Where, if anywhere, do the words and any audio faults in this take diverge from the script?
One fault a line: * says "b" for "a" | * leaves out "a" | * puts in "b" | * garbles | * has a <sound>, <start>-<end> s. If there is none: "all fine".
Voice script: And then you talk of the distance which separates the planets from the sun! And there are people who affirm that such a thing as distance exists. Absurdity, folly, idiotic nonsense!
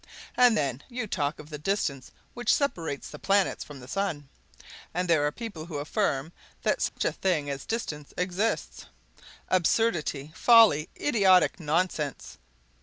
* has a dropout, 6.9-7.0 s